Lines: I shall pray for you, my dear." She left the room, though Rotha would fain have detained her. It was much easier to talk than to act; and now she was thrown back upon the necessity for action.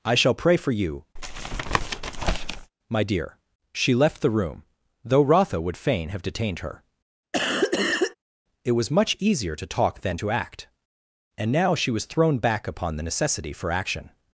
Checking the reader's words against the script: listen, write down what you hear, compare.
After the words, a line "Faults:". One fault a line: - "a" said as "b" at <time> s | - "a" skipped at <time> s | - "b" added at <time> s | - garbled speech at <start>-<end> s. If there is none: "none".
I shall pray for you, my dear." She left the room, though Rotha would fain have detained her. It was much easier to talk than to act; and now she was thrown back upon the necessity for action.
Faults:
none